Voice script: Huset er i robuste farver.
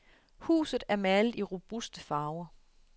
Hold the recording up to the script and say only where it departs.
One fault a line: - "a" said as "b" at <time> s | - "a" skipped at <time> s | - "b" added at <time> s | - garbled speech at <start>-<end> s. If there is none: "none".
- "malet" added at 0.9 s